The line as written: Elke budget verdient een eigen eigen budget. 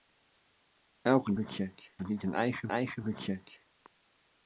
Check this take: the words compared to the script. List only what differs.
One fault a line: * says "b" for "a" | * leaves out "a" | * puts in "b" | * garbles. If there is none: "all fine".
all fine